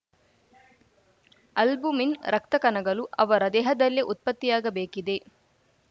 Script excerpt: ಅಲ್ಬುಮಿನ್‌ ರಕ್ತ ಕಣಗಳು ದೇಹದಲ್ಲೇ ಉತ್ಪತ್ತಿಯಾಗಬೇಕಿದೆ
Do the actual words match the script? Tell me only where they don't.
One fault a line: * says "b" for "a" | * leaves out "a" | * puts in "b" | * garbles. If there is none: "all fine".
* puts in "ಅವರ"